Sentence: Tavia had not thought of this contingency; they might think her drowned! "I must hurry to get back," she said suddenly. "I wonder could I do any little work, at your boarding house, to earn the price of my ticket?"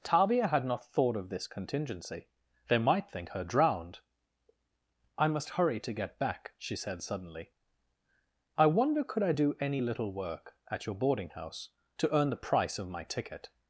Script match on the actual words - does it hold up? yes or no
yes